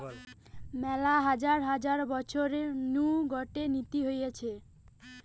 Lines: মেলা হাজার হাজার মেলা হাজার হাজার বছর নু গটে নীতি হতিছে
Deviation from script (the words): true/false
true